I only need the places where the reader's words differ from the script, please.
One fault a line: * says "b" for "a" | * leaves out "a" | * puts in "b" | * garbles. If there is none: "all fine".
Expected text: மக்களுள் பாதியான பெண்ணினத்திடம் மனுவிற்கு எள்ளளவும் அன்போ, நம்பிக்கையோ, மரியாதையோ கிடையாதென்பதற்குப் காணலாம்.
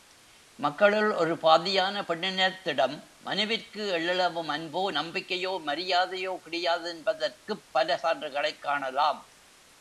* puts in "ஒரு"
* puts in "பல சான்றுகளைக்"